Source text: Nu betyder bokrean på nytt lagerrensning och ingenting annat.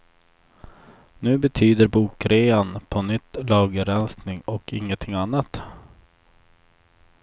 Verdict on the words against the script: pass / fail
pass